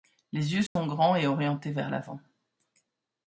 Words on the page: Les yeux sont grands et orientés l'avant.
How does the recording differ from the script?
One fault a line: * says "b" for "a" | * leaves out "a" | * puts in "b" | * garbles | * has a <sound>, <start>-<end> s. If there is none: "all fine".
* has a dropout, 0.7-0.8 s
* puts in "vers"